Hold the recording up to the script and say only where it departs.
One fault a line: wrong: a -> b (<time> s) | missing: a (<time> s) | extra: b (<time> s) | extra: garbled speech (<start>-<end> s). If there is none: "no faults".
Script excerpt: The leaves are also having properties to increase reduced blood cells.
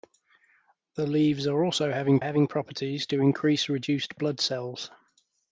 extra: having (2.2 s)